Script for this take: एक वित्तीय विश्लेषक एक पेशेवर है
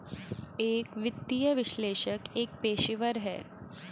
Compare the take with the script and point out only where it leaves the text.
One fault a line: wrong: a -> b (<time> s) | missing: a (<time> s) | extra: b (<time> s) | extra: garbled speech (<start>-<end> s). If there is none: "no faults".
no faults